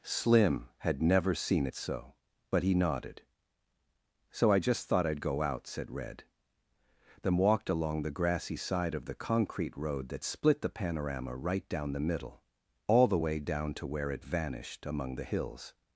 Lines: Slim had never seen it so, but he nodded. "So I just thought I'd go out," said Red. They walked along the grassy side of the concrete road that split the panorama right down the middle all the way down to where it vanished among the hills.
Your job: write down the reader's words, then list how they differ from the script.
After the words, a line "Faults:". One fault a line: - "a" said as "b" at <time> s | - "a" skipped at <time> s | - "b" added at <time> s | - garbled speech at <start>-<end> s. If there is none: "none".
Slim had never seen it so, but he nodded. "So I just thought I'd go out," said Red. Them walked along the grassy side of the concrete road that split the panorama right down the middle all the way down to where it vanished among the hills.
Faults:
- "They" said as "Them" at 7.2 s